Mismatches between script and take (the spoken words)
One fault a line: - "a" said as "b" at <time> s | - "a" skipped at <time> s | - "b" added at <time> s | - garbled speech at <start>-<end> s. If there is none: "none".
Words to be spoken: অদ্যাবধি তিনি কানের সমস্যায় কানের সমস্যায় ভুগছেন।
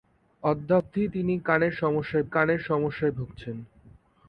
none